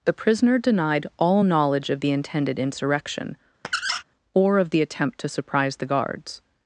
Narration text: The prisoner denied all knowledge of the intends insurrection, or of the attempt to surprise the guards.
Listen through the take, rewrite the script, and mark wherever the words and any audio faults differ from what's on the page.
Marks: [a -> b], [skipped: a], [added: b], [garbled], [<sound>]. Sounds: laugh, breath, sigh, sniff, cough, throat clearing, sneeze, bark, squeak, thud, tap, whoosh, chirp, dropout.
The prisoner denied all knowledge of the [intends -> intended] insurrection, [squeak] or of the attempt to surprise the guards.